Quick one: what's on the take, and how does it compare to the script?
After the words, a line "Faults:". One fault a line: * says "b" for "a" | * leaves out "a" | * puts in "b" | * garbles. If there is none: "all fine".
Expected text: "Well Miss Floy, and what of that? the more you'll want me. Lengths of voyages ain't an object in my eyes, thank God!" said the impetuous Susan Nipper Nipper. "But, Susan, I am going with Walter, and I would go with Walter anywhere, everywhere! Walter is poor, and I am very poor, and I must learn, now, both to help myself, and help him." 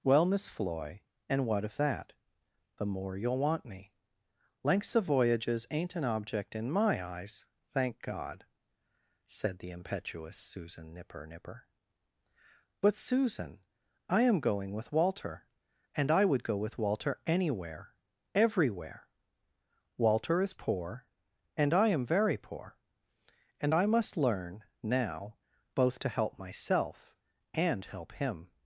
"Well Miss Floy, and what of that? the more you'll want me. Lengths of voyages ain't an object in my eyes, thank God!" said the impetuous Susan Nipper Nipper. "But, Susan, I am going with Walter, and I would go with Walter anywhere, everywhere! Walter is poor, and I am very poor, and I must learn, now, both to help myself, and help him."
Faults:
all fine